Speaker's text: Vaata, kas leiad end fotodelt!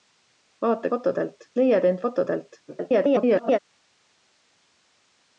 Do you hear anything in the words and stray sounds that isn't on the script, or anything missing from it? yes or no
yes